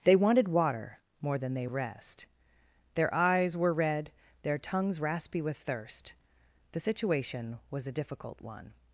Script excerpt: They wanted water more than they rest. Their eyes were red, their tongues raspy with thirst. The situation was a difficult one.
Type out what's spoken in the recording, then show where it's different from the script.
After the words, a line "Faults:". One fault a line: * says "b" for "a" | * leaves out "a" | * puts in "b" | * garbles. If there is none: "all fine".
They wanted water more than they rest. Their eyes were red, their tongues raspy with thirst. The situation was a difficult one.
Faults:
all fine